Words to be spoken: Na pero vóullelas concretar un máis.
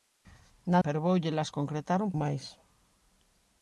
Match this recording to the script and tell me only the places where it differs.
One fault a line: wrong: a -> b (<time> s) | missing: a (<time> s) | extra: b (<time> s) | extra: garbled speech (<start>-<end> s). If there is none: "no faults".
no faults